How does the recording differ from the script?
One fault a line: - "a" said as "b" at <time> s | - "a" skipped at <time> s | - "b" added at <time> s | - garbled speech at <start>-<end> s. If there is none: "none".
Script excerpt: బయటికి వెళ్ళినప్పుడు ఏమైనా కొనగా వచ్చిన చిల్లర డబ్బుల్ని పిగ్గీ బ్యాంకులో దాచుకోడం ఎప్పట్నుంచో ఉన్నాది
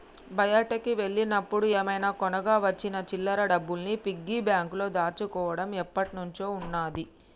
none